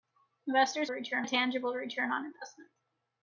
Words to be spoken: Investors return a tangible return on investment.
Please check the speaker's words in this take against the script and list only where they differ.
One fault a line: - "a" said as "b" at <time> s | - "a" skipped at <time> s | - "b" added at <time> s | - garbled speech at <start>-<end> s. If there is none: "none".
none